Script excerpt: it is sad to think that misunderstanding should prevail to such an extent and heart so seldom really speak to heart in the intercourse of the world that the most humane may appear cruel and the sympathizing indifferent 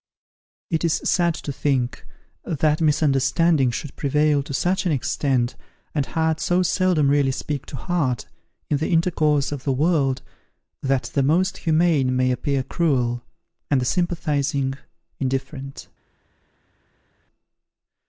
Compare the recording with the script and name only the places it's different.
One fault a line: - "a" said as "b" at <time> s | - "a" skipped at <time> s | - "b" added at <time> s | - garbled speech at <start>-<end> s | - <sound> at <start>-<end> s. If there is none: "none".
none